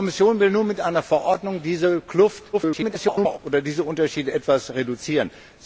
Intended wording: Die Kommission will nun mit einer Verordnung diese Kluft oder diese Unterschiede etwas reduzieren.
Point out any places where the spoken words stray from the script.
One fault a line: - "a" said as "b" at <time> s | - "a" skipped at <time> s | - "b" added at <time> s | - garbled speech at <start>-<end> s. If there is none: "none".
- garbled speech at 2.5-3.4 s